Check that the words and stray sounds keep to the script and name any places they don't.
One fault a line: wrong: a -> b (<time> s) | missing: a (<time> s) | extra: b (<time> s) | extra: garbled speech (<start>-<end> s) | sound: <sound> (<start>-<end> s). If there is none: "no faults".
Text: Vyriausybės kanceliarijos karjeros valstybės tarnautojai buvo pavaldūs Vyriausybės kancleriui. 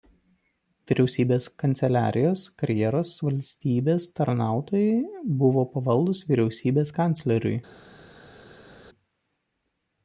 no faults